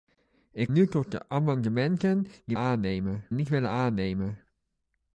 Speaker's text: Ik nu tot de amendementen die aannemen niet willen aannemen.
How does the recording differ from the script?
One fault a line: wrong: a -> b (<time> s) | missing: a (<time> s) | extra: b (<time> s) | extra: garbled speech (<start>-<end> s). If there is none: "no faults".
no faults